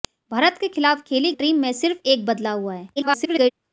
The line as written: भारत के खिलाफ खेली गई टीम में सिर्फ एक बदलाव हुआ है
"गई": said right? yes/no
no